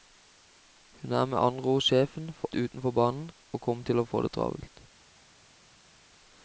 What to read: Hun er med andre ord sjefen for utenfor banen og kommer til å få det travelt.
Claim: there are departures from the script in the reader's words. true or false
false